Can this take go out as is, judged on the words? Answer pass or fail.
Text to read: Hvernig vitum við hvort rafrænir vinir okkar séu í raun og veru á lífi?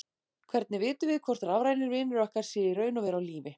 pass